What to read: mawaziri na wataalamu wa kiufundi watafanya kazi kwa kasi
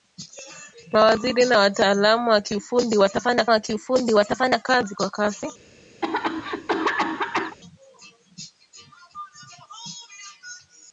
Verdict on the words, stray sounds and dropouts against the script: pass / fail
fail